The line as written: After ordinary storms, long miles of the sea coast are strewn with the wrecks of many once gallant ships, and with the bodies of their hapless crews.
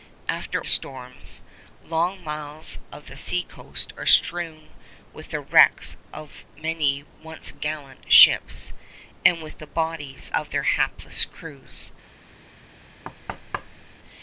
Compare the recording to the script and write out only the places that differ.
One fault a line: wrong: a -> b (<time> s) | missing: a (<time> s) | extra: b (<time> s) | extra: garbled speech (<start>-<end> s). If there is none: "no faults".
missing: ordinary (0.6 s)